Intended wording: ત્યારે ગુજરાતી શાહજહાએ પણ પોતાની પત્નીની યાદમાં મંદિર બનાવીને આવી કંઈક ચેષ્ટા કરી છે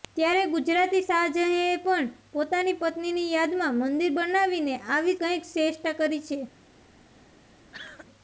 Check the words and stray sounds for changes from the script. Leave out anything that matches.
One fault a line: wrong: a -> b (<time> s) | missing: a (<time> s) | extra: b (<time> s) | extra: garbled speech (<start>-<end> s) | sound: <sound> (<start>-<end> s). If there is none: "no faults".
sound: cough (7.7-8.1 s)